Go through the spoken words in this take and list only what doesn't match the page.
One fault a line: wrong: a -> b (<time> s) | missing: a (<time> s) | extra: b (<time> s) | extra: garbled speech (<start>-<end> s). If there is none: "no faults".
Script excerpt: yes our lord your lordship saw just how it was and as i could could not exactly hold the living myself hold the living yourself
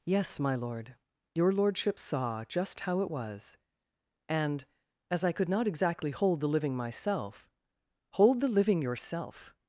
wrong: our -> my (0.4 s)
missing: could (5.5 s)